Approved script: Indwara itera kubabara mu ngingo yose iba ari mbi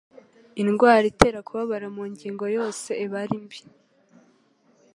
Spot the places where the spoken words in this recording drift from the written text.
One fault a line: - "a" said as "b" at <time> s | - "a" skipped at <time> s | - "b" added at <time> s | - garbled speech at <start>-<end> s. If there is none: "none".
none